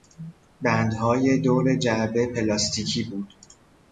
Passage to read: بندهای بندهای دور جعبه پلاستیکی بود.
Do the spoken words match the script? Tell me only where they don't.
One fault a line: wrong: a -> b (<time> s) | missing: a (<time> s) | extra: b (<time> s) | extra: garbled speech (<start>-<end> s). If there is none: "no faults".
missing: بندهای (1.4 s)